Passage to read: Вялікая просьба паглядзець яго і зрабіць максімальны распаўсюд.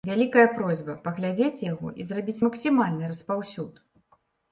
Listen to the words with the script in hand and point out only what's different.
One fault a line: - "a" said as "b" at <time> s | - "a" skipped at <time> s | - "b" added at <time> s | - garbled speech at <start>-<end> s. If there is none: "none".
none